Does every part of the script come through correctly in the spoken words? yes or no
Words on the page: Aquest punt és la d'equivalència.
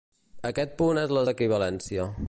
yes